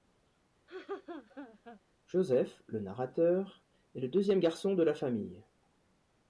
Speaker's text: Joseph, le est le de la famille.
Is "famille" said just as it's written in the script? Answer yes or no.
yes